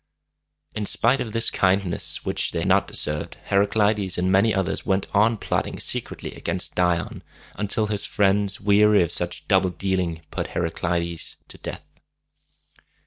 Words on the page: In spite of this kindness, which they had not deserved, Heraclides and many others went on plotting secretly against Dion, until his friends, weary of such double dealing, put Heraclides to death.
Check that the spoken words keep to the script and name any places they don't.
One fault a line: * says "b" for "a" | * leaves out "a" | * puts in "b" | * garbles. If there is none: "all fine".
all fine